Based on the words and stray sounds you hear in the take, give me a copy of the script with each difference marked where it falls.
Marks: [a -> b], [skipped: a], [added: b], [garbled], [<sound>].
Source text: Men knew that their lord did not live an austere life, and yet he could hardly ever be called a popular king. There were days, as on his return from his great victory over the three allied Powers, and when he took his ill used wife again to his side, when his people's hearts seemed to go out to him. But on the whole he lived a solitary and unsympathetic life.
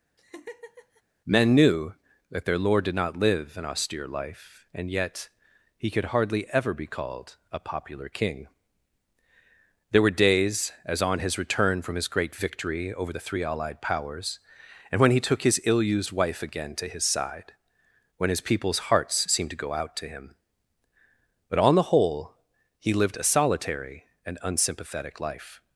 [laugh] Men knew that their lord did not live an austere life, and yet he could hardly ever be called a popular king. There were days, as on his return from his great victory over the three allied Powers, and when he took his ill used wife again to his side, when his people's hearts seemed to go out to him. But on the whole he lived a solitary and unsympathetic life.